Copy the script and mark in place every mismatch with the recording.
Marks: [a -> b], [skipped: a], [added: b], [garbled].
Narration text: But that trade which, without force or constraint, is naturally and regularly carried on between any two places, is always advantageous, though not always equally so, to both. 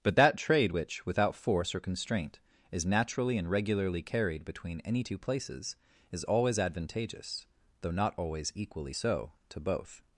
But that trade which, without force or constraint, is naturally and regularly carried [skipped: on] between any two places, is always advantageous, though not always equally so, to both.